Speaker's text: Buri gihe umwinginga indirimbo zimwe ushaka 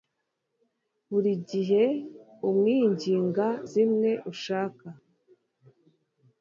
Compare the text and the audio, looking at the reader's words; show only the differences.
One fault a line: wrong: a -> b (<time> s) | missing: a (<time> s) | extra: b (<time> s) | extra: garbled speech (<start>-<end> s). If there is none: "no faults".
missing: indirimbo (3.5 s)